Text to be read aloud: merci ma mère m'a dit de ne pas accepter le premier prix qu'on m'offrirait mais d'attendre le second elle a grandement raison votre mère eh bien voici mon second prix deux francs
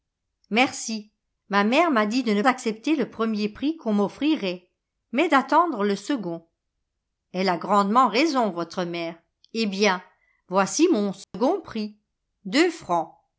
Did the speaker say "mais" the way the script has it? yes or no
yes